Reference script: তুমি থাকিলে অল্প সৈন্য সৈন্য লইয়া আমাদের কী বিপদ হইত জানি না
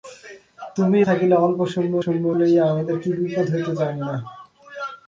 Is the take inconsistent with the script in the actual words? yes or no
no